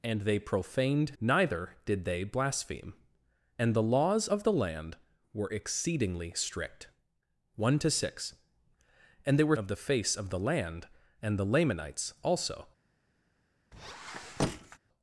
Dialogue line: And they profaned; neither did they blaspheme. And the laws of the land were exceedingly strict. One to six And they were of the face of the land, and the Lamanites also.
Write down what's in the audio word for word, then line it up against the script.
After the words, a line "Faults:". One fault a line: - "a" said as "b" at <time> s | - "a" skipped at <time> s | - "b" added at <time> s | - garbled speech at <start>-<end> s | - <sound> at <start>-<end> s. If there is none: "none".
And they profaned; neither did they blaspheme. And the laws of the land were exceedingly strict. One to six And they were of the face of the land, and the Lamanites also.
Faults:
- squeak at 13.7-14.8 s